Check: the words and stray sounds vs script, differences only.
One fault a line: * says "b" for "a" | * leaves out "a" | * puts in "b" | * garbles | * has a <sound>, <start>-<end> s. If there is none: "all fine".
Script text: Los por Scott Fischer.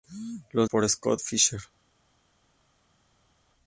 all fine